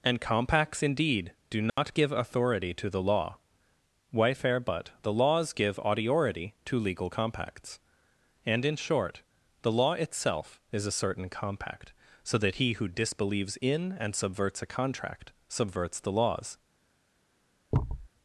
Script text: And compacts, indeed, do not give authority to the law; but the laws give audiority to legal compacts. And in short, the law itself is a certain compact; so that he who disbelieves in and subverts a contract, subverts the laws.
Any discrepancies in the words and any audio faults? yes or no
yes